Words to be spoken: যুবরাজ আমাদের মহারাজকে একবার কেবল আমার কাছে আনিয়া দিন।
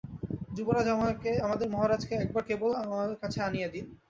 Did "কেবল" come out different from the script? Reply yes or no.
no